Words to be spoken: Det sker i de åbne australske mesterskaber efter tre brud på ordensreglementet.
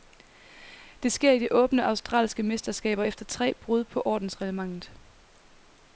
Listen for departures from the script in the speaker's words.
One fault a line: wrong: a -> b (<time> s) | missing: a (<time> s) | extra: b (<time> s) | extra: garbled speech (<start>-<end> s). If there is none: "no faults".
no faults